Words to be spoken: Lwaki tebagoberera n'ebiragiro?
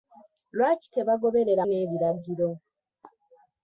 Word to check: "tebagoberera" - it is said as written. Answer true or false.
true